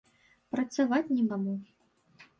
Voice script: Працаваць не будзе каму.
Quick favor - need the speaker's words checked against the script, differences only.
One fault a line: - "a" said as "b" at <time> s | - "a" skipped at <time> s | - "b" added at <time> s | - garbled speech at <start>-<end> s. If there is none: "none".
- "будзе" skipped at 1.2 s